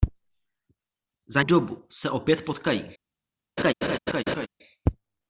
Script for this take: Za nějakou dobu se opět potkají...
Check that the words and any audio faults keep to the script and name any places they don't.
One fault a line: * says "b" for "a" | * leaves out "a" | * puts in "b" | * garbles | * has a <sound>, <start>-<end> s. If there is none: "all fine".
* leaves out "nějakou"
* has a laugh, 3.6-4.5 s